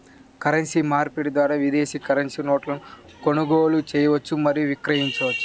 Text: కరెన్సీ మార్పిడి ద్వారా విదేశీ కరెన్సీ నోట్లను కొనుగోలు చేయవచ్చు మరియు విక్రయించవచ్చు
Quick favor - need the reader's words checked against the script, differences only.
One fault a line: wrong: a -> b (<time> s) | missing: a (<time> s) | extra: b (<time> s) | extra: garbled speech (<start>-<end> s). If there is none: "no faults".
no faults